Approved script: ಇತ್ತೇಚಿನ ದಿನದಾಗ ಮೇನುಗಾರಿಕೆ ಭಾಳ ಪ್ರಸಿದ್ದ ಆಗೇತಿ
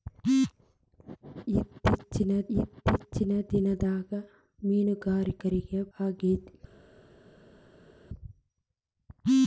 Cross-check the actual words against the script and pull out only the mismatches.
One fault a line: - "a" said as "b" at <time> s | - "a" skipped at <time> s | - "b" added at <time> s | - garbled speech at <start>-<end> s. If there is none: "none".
- "ಇತ್ತೇಚಿನ" added at 2.5 s
- "ಭಾಳ ಪ್ರಸಿದ್ದ" skipped at 5.6 s